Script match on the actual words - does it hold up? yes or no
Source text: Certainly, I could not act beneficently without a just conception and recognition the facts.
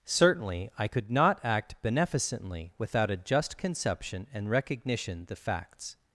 yes